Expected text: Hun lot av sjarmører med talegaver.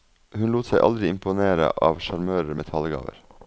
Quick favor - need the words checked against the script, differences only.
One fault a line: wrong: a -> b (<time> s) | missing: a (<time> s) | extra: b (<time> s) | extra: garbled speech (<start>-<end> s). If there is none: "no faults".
extra: seg aldri imponere (0.7 s)